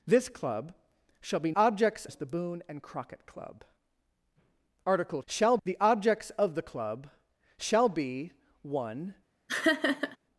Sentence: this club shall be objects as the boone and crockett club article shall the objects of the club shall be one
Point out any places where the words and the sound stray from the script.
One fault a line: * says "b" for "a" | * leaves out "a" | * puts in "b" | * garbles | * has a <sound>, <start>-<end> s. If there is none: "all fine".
* has a laugh, 9.5-10.2 s